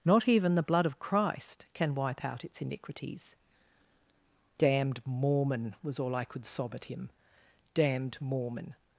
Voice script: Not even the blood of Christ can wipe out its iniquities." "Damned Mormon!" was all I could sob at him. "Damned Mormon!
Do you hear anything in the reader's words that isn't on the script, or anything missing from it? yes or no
no